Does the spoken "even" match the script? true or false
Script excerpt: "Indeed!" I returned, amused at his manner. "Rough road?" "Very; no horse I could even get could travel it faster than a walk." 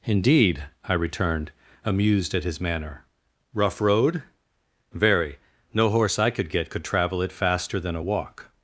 false